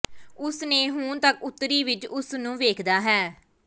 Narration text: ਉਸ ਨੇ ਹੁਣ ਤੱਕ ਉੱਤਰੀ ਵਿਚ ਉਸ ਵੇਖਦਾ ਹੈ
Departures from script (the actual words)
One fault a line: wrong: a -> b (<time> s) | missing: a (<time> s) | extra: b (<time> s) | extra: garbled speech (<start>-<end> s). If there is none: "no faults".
extra: ਨੂੰ (2.4 s)